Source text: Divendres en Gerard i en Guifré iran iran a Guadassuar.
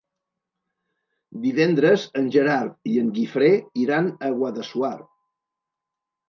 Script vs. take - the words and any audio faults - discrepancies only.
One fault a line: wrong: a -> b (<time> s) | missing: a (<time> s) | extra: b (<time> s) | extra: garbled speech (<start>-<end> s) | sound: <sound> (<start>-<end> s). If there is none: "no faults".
missing: iran (4.1 s)